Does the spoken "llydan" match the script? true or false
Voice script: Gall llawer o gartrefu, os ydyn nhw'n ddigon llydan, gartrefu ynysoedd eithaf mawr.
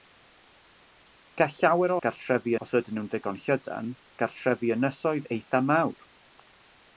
true